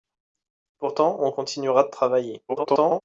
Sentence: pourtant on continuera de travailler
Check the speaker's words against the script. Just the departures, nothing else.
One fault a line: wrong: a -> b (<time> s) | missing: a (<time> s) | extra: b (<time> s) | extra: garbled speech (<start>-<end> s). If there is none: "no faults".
extra: garbled speech (2.5-3.0 s)